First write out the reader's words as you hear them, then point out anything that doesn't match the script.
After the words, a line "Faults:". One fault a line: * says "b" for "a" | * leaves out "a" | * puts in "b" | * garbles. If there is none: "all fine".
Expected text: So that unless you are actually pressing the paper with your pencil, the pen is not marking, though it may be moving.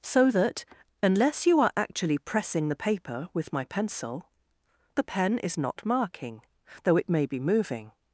So that unless you are actually pressing the paper with my pencil, the pen is not marking, though it may be moving.
Faults:
* says "my" for "your"